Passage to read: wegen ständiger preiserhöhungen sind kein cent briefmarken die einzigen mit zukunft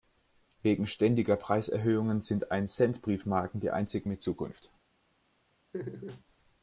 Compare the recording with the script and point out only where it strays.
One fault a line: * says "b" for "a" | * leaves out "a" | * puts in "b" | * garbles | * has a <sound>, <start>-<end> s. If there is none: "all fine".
* says "ein" for "kein"
* has a laugh, 5.7-6.2 s